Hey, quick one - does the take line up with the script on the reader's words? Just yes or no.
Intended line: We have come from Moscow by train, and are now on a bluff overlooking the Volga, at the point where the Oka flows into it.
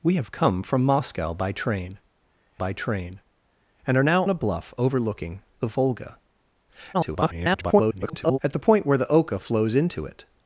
no